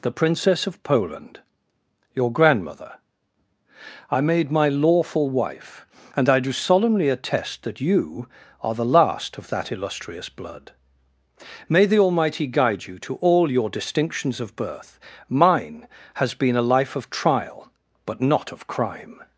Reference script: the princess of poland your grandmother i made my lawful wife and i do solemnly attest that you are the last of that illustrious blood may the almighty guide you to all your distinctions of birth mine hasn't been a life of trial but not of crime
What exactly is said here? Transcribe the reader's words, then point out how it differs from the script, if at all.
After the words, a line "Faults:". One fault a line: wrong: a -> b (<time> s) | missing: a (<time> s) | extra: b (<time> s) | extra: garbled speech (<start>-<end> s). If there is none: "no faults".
the princess of poland your grandmother i made my lawful wife and i do solemnly attest that you are the last of that illustrious blood may the almighty guide you to all your distinctions of birth mine has been a life of trial but not of crime
Faults:
wrong: hasn't -> has (16.1 s)